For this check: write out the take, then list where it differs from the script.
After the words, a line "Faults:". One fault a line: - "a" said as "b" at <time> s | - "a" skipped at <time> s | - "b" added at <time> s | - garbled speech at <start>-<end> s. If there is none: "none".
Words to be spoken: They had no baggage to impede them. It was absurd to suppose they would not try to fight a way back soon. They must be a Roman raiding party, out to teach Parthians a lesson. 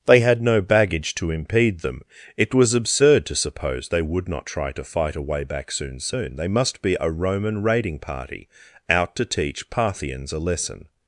They had no baggage to impede them. It was absurd to suppose they would not try to fight a way back soon soon. They must be a Roman raiding party, out to teach Parthians a lesson.
Faults:
- "soon" added at 6.0 s